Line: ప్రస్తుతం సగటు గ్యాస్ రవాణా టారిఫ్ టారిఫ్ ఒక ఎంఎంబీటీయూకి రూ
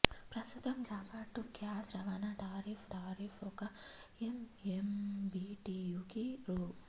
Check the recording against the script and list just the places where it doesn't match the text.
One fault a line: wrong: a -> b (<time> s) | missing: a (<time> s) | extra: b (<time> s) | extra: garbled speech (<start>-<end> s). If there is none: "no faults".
no faults